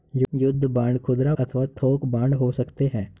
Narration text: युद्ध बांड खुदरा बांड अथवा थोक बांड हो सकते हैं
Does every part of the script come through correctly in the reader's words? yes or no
no